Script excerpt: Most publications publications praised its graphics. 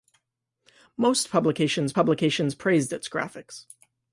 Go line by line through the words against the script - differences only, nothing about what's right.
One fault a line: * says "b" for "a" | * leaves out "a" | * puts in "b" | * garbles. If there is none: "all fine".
all fine